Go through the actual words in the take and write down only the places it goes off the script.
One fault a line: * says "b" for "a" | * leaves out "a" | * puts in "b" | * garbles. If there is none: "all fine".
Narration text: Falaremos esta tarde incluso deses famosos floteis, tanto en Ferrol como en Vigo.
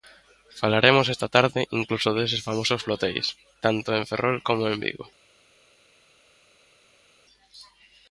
all fine